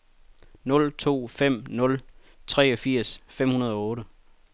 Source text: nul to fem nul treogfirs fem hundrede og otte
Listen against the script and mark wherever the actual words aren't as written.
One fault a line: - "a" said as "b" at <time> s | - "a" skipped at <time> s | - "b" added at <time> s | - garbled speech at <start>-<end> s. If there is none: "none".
none